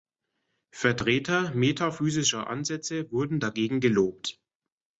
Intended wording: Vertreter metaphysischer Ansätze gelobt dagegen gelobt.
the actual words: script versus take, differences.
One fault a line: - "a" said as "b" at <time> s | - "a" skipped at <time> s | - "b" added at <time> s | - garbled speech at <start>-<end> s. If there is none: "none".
- "gelobt" said as "wurden" at 3.1 s